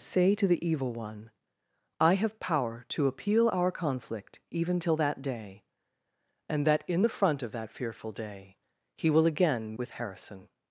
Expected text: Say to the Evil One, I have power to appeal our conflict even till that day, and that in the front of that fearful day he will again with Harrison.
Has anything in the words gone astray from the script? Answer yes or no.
no